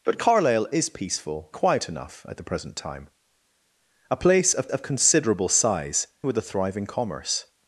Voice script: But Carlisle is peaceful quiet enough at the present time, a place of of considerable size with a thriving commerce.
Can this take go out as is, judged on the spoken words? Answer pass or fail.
pass